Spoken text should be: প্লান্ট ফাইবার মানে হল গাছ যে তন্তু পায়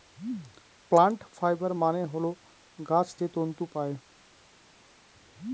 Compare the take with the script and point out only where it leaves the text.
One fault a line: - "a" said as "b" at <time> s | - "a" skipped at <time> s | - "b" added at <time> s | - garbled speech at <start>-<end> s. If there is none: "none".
none